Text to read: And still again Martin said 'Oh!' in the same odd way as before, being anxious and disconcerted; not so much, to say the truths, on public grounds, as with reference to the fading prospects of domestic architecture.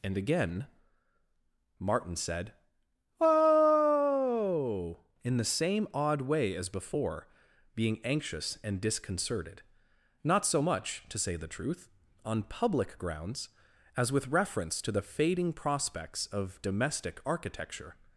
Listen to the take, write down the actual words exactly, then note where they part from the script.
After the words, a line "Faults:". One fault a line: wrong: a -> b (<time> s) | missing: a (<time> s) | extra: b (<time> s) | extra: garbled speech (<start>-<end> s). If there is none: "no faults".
And again Martin said 'Oh!' in the same odd way as before, being anxious and disconcerted; not so much, to say the truth, on public grounds, as with reference to the fading prospects of domestic architecture.
Faults:
missing: still (0.2 s)
wrong: truths -> truth (11.5 s)